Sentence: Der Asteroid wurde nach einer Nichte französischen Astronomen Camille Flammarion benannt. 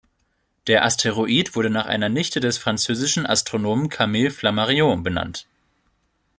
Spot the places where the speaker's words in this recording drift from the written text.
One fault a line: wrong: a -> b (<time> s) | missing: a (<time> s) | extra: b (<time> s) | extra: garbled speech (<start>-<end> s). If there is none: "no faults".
extra: des (2.4 s)